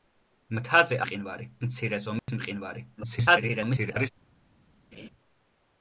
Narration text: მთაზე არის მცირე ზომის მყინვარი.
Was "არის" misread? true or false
true